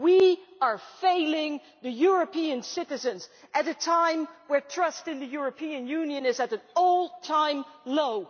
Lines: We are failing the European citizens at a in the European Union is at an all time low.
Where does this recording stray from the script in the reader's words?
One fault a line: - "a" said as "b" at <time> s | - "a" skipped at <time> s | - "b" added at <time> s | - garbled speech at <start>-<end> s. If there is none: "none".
- "time when trust" added at 3.7 s